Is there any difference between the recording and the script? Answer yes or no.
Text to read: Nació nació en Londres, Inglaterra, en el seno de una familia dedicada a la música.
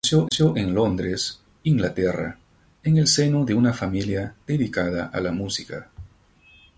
no